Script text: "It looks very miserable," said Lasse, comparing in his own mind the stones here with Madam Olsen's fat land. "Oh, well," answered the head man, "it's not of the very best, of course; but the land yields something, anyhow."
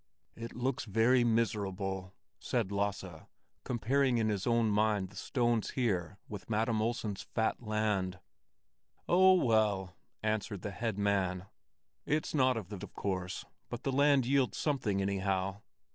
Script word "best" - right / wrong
wrong